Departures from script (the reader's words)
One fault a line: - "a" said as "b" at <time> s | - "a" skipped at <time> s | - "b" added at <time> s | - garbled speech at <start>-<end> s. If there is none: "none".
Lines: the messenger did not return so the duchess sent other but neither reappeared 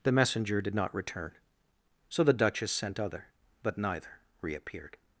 none